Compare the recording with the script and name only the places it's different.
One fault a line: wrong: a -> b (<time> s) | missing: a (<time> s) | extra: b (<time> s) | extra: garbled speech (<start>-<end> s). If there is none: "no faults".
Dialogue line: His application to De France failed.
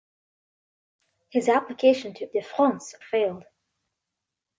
no faults